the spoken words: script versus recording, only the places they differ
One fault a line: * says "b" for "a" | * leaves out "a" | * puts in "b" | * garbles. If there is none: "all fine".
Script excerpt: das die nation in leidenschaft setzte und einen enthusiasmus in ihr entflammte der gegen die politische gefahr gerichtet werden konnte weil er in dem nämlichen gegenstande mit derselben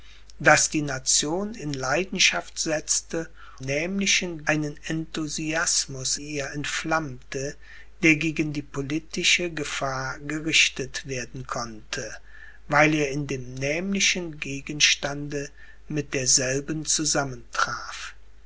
* says "nämlichen" for "und"
* leaves out "in"